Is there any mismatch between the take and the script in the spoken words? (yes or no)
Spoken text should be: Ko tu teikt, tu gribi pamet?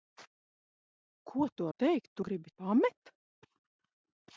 no